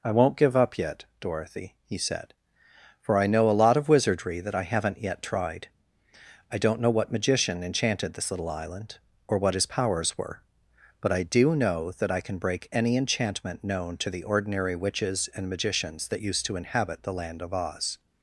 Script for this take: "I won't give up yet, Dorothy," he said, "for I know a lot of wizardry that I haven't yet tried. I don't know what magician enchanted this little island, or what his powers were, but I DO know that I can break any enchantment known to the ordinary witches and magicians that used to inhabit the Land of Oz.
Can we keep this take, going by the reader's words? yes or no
yes